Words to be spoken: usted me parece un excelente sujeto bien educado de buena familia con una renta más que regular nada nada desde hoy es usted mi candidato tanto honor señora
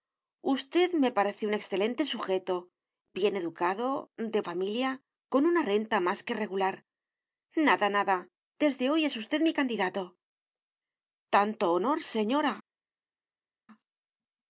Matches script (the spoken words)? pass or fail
fail